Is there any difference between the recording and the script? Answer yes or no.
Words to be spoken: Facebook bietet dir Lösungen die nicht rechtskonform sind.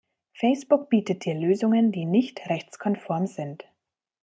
no